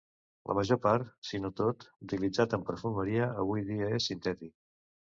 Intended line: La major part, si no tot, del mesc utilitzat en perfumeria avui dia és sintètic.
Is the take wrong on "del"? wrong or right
wrong